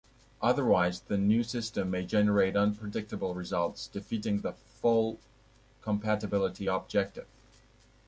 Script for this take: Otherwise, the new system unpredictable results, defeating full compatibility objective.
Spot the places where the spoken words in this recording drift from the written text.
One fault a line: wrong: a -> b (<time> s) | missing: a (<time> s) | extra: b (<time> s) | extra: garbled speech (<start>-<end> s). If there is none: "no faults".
extra: may generate (1.9 s)
extra: the (4.4 s)